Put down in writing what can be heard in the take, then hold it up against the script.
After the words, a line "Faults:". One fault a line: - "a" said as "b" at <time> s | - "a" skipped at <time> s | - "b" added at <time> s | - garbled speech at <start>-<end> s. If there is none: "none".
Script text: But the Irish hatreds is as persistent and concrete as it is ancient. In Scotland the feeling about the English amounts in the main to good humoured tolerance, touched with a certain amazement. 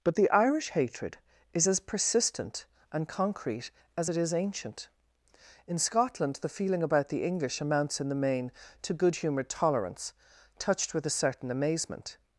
But the Irish hatred is as persistent and concrete as it is ancient. In Scotland the feeling about the English amounts in the main to good humoured tolerance, touched with a certain amazement.
Faults:
- "hatreds" said as "hatred" at 0.7 s